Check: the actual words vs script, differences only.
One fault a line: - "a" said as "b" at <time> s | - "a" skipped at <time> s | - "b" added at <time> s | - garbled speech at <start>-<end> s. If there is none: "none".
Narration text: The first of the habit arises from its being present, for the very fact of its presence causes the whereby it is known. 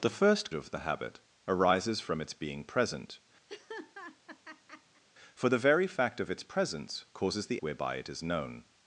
none